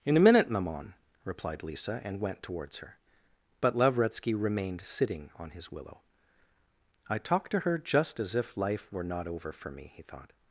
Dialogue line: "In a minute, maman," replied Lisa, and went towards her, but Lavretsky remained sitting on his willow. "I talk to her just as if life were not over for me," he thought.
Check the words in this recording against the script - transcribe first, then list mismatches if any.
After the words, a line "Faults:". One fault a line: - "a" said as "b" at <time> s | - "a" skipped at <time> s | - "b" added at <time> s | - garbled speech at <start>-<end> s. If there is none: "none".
"In a minute, maman," replied Lisa, and went towards her, but Lavretsky remained sitting on his willow. "I talk to her just as if life were not over for me," he thought.
Faults:
none